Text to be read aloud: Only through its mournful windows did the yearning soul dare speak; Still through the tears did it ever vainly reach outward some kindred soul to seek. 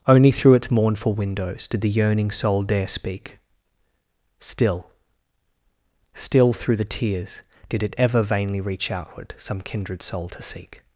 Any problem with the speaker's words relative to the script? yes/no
yes